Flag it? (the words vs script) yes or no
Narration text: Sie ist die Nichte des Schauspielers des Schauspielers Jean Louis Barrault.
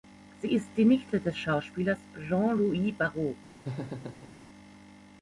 yes